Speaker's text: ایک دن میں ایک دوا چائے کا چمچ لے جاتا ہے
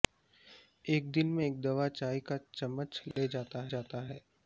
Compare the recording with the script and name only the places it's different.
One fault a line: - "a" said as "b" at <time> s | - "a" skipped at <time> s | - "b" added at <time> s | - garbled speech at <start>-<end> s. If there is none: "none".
- "جاتا" added at 3.7 s